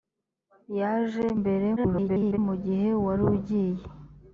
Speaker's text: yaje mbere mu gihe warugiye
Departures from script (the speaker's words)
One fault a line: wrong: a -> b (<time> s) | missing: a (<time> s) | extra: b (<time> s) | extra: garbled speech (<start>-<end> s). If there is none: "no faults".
extra: garbled speech (1.8-2.4 s)